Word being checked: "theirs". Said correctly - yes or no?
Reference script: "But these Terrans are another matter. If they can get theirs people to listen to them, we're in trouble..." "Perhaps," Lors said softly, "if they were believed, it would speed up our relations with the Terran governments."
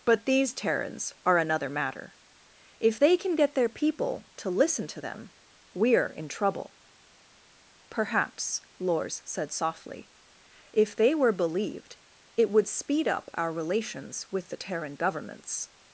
no